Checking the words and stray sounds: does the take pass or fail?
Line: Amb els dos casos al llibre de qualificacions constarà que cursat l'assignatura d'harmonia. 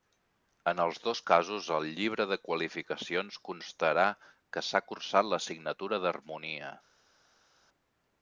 fail